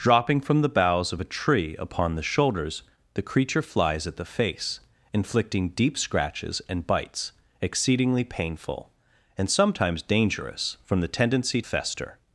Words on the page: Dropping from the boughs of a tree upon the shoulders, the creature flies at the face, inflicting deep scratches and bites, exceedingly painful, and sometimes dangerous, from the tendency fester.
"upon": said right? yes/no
yes